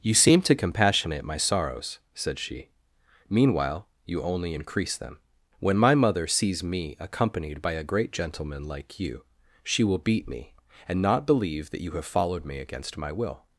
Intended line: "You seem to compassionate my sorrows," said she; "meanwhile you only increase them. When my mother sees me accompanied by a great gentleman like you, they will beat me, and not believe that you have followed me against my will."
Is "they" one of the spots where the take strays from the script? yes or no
yes